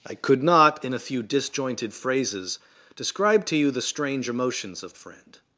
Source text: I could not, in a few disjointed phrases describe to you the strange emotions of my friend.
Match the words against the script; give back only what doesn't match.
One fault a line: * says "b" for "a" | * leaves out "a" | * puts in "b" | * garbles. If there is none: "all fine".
* leaves out "my"